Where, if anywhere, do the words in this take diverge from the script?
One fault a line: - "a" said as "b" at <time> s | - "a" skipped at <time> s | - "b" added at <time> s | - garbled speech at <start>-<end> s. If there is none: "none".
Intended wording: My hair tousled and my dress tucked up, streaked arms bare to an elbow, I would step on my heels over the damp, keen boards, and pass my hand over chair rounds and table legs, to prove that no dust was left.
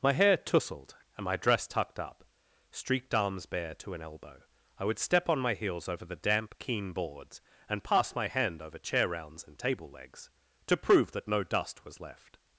none